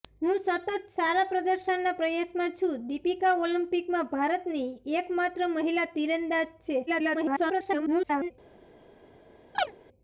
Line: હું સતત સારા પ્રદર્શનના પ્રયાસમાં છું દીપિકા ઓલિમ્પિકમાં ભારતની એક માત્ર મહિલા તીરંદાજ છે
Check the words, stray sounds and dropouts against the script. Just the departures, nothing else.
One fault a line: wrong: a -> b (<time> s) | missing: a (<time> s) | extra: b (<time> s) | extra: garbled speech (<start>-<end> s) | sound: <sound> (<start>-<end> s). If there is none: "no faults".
extra: garbled speech (6.9-8.3 s)
sound: chirp (9.5-9.8 s)